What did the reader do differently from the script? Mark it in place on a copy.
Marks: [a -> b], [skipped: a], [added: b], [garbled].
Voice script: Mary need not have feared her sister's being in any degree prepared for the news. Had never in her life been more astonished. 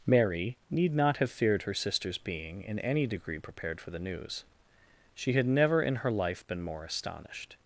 Mary need not have feared her sister's being in any degree prepared for the news. [added: She] Had never in her life been more astonished.